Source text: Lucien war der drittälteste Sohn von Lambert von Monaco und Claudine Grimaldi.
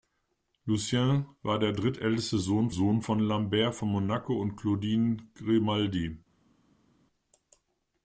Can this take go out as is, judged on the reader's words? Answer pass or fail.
fail